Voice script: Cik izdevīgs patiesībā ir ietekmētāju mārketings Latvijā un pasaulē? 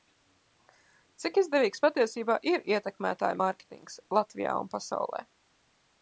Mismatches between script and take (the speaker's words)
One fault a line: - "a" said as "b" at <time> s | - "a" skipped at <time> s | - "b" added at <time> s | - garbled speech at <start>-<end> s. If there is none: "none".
none